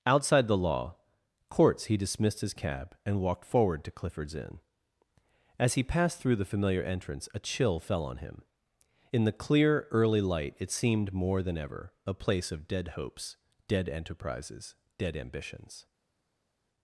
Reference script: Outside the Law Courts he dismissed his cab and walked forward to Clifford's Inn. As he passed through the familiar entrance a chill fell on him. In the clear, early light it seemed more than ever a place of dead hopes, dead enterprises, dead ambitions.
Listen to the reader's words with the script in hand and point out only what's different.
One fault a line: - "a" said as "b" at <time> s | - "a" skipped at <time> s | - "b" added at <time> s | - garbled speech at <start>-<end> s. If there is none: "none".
none